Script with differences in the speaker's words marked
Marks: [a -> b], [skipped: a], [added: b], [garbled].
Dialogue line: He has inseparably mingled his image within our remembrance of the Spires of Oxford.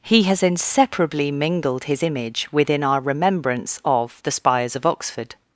He has inseparably mingled his image within our remembrance of the Spires of Oxford.